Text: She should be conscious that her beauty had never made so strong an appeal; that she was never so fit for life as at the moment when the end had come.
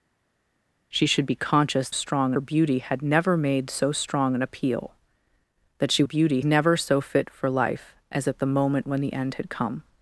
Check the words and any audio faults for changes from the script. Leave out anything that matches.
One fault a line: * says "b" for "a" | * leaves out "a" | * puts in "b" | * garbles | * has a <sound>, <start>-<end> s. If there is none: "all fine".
* says "strong" for "that"
* says "beauty" for "was"